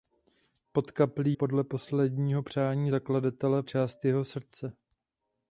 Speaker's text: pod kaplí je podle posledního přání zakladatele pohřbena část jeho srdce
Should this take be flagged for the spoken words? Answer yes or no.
yes